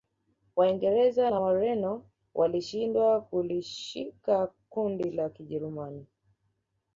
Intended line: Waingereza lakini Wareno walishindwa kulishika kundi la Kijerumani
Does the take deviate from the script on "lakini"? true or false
true